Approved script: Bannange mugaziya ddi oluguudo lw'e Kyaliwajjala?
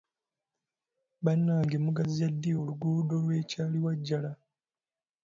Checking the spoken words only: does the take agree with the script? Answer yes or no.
yes